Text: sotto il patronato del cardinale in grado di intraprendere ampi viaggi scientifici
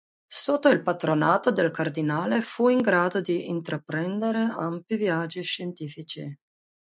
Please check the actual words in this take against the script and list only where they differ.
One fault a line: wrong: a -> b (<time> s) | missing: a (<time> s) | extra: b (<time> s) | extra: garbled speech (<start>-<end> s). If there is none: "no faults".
extra: fu (2.4 s)